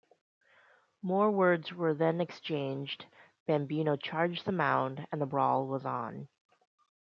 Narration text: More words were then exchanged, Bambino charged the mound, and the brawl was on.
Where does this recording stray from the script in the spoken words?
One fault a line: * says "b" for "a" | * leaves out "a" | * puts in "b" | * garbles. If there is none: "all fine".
all fine